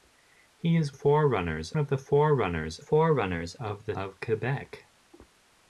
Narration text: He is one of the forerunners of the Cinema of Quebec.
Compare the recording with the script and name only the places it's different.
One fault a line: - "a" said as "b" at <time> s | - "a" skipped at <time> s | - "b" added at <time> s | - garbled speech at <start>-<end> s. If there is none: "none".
- "one" said as "forerunners" at 0.9 s
- "forerunners" added at 2.8 s
- "Cinema" skipped at 4.0 s